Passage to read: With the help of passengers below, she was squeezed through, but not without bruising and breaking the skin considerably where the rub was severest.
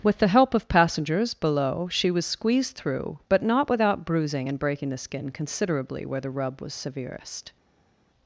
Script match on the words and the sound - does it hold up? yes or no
yes